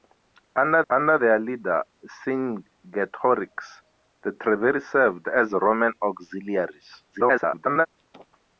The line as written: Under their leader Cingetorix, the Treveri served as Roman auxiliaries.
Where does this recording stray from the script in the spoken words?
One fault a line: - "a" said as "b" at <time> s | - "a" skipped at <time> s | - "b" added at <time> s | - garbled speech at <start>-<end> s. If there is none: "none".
- "under" added at 0.9 s
- garbled speech at 7.1-7.9 s